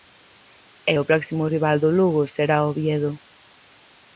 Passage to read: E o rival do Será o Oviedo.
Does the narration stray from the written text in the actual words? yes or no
yes